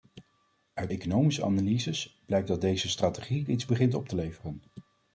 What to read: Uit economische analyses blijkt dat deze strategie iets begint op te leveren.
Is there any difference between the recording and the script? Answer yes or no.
no